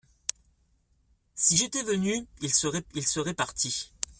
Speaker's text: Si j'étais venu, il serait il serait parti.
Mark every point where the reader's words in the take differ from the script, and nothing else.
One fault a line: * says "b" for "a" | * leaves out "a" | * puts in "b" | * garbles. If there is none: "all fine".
all fine